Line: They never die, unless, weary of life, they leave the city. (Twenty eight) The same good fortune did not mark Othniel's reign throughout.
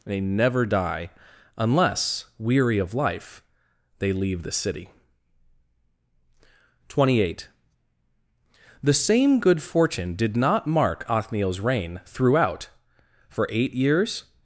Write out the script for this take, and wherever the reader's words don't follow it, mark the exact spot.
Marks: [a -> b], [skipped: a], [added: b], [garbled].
They never die, unless, weary of life, they leave the city. (Twenty eight) The same good fortune did not mark Othniel's reign throughout. [added: For eight years]